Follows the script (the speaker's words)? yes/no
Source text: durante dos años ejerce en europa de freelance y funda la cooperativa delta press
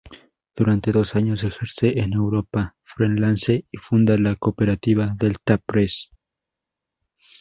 no